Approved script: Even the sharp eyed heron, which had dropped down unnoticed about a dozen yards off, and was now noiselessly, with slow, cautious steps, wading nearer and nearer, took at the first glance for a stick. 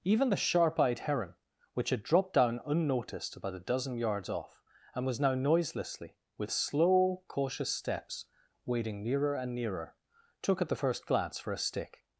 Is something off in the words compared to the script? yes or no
no